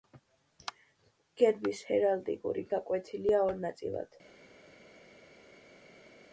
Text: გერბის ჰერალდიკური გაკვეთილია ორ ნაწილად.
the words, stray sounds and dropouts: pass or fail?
pass